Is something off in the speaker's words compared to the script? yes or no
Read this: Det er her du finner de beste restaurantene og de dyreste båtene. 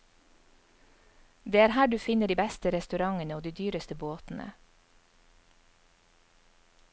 no